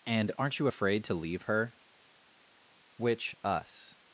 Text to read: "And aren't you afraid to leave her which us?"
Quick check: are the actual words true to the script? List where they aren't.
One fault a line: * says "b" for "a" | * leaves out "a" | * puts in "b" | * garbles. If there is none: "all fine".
all fine